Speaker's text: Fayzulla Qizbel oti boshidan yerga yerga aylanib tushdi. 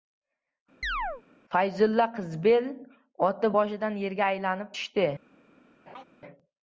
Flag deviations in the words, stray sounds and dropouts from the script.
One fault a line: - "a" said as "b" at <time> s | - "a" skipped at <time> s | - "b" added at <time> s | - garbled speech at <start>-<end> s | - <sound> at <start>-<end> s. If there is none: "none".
- chirp at 0.8-1.2 s
- "yerga" skipped at 4.3 s
- laugh at 5.9-6.0 s